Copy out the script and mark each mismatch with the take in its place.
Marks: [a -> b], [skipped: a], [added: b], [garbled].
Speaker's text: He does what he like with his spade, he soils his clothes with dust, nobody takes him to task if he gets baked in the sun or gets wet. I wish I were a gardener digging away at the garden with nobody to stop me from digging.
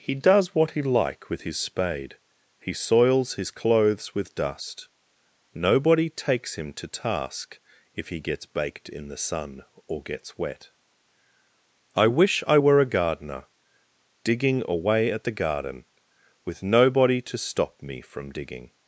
He does what he like with his spade, he soils his clothes with dust, nobody takes him to task if he gets baked in the sun or gets wet. I wish I were a gardener digging away at the garden with nobody to stop me from digging.